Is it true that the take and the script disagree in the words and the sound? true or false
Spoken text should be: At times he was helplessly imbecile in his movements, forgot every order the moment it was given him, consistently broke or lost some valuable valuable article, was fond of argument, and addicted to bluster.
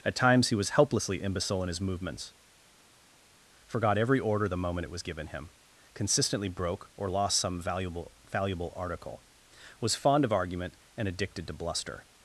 false